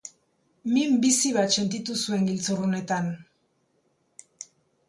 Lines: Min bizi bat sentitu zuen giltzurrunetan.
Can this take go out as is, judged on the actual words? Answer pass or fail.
pass